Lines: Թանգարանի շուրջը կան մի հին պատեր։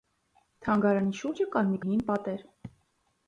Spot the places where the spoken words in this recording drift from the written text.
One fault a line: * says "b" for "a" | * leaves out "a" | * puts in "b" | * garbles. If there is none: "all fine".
all fine